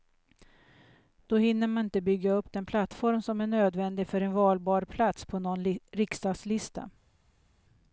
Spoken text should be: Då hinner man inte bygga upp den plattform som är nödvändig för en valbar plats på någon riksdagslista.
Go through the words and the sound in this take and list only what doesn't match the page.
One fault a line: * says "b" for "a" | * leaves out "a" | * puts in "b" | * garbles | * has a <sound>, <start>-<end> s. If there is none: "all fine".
all fine